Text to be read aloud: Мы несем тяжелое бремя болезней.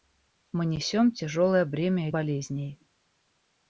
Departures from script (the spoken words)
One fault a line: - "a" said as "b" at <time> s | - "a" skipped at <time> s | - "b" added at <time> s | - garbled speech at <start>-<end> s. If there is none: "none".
none